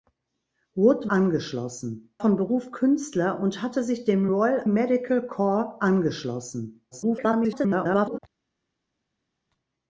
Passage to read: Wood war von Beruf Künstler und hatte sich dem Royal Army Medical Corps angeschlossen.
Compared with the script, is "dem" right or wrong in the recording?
right